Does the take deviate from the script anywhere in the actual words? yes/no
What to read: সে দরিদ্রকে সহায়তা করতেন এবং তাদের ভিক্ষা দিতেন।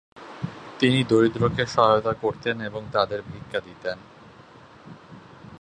yes